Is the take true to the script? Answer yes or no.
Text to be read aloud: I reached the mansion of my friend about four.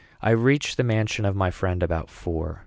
yes